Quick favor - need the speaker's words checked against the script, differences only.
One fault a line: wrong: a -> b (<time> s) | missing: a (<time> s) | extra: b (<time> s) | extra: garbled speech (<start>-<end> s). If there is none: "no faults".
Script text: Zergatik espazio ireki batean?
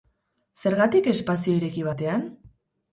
no faults